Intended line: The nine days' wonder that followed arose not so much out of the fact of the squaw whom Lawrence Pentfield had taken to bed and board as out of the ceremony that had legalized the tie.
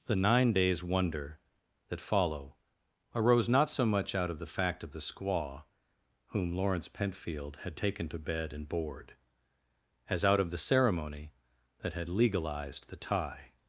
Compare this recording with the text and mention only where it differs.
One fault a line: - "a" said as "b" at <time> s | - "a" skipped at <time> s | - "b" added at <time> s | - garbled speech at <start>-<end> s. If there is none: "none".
- "followed" said as "follow" at 2.0 s